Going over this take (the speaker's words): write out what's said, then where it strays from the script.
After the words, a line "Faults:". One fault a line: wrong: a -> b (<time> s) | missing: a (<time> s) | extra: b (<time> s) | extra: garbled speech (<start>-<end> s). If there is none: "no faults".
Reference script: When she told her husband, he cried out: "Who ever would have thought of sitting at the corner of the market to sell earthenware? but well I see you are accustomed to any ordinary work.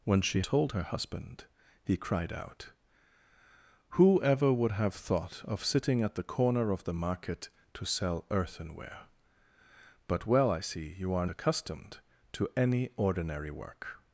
When she told her husband, he cried out: "Who ever would have thought of sitting at the corner of the market to sell earthenware? but well I see you are accustomed to any ordinary work.
Faults:
no faults